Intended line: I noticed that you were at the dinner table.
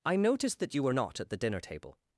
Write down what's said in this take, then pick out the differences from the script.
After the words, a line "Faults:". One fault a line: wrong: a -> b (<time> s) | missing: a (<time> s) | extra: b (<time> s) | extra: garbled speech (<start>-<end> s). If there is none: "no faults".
I noticed that you were not at the dinner table.
Faults:
extra: not (0.9 s)